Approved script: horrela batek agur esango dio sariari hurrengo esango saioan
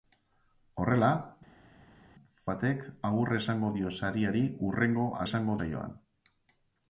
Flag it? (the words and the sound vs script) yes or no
no